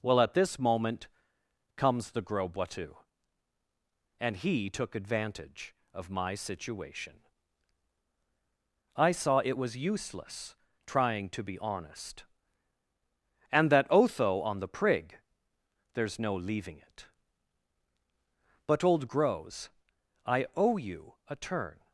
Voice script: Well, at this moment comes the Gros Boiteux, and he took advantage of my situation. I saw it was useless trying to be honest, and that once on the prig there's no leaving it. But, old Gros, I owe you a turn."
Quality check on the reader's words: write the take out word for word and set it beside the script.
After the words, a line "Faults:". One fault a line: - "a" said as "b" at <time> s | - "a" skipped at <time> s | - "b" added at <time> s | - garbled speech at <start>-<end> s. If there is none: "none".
Well, at this moment comes the Gros Boiteux, and he took advantage of my situation. I saw it was useless trying to be honest, and that otho on the prig there's no leaving it. But, old Gros, I owe you a turn."
Faults:
- "once" said as "otho" at 13.9 s